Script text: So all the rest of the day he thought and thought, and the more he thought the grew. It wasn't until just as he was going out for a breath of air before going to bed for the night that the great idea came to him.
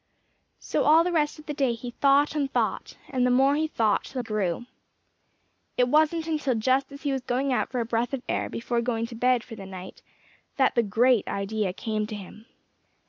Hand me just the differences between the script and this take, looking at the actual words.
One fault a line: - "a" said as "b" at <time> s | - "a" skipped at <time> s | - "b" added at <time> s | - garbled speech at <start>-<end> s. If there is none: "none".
none